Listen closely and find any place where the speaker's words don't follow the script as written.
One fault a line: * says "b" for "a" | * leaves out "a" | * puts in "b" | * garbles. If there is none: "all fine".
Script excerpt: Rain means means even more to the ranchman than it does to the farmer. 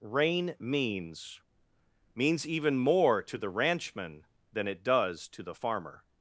all fine